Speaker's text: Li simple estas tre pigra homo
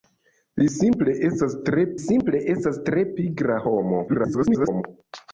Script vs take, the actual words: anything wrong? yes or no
yes